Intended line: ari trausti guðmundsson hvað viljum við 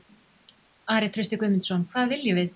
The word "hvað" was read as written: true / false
true